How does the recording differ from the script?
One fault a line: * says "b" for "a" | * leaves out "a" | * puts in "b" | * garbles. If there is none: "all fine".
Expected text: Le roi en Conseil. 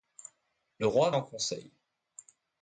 all fine